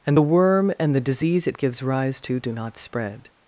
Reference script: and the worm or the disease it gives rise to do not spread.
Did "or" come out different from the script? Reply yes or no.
yes